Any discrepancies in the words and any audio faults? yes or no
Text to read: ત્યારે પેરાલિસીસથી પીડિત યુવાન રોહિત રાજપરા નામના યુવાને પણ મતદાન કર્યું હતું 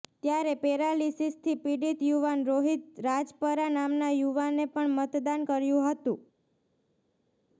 no